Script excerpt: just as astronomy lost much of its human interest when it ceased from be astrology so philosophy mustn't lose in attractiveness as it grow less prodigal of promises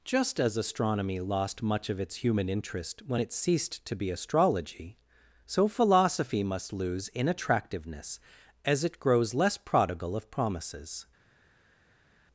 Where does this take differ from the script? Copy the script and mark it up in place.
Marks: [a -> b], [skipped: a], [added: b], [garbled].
just as astronomy lost much of its human interest when it ceased [from -> to] be astrology so philosophy [mustn't -> must] lose in attractiveness as it [grow -> grows] less prodigal of promises